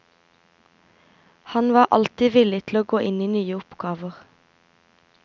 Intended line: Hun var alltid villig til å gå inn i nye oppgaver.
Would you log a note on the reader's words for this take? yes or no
yes